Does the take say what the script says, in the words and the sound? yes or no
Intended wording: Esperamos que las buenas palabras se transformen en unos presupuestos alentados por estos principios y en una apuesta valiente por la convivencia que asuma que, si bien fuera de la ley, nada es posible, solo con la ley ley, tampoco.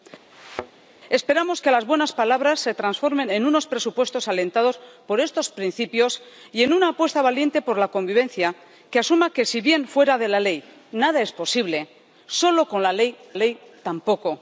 no